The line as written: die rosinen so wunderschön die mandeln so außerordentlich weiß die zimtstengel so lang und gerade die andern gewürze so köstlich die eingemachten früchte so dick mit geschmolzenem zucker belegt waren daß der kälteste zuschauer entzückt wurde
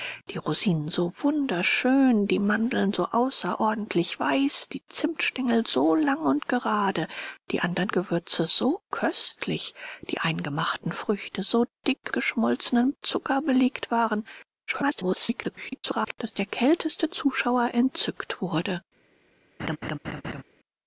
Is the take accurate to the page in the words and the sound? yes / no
no